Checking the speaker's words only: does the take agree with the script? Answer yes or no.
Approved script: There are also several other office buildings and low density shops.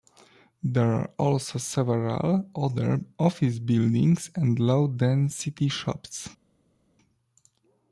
yes